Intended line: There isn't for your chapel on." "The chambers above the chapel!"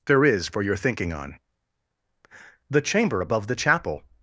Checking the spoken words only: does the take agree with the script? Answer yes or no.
no